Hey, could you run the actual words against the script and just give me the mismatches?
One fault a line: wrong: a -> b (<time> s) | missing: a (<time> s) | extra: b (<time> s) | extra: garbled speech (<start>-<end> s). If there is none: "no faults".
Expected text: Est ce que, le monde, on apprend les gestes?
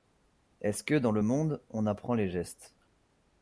extra: dans (0.9 s)